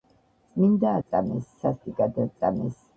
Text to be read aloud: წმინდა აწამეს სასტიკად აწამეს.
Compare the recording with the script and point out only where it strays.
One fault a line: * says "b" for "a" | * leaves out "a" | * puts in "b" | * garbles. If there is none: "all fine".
all fine